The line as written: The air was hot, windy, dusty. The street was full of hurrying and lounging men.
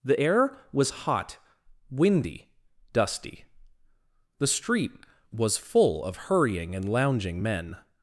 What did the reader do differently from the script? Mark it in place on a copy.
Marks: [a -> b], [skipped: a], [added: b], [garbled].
The air was hot, windy, dusty. The street was full of hurrying and lounging men.